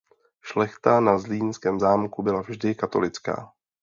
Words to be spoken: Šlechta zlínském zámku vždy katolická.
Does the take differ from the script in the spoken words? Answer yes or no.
yes